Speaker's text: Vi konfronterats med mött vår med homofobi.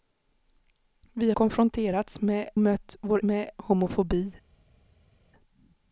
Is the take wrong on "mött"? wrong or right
right